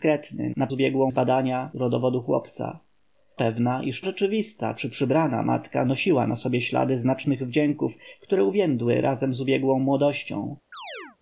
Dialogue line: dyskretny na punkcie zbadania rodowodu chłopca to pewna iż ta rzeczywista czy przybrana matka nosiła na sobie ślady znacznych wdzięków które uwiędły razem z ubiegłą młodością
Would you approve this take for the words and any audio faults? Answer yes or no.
no